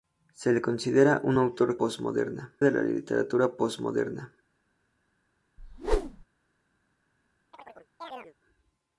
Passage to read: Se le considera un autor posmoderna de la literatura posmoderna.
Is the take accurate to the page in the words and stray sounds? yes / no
no